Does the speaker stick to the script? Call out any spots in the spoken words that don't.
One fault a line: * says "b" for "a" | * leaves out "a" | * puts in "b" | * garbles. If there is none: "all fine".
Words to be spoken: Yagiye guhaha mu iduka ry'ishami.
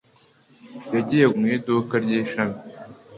* leaves out "guhaha"